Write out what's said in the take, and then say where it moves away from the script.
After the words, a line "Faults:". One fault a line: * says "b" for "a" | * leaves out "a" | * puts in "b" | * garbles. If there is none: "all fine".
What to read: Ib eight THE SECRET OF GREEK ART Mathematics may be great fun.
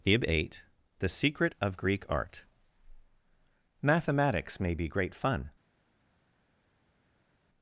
Ib eight THE SECRET OF GREEK ART Mathematics may be great fun.
Faults:
all fine